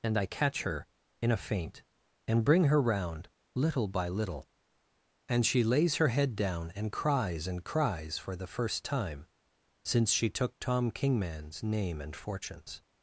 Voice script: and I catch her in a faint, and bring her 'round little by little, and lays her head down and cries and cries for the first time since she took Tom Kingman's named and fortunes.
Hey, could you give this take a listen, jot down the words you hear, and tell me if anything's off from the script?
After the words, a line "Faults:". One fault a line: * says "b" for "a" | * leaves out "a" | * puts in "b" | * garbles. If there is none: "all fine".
and I catch her in a faint, and bring her 'round little by little, and she lays her head down and cries and cries for the first time since she took Tom Kingman's name and fortunes.
Faults:
* puts in "she"
* says "name" for "named"